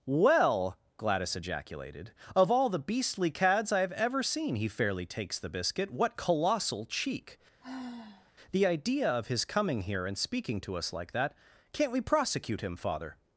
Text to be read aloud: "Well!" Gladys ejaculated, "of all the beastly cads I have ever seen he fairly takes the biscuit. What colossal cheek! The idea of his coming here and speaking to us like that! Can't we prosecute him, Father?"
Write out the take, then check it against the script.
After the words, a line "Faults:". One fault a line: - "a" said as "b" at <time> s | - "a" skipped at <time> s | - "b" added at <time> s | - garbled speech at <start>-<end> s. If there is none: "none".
"Well!" Gladys ejaculated, "of all the beastly cads I have ever seen he fairly takes the biscuit. What colossal cheek! The idea of his coming here and speaking to us like that! Can't we prosecute him, Father?"
Faults:
none